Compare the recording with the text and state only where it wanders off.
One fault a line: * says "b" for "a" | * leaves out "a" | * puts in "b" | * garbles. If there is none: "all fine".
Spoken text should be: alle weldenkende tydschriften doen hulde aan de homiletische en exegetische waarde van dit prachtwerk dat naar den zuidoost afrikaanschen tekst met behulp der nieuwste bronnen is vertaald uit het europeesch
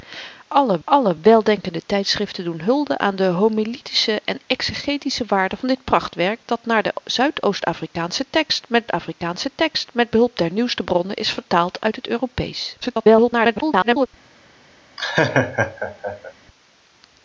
* puts in "alle"
* puts in "afrikaanschen tekst met"
* garbles